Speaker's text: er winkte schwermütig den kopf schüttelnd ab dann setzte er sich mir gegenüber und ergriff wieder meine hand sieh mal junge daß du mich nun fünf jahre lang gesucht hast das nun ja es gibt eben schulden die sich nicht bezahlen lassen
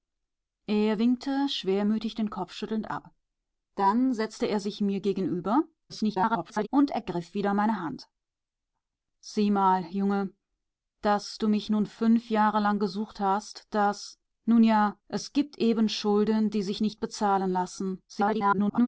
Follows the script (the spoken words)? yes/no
no